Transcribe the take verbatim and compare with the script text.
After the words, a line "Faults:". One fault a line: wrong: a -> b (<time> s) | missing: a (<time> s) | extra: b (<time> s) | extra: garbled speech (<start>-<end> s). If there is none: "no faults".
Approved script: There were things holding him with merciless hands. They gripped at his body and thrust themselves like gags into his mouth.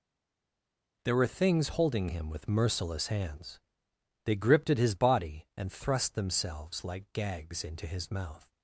There were things holding him with merciless hands. They gripped at his body and thrust themselves like gags into his mouth.
Faults:
no faults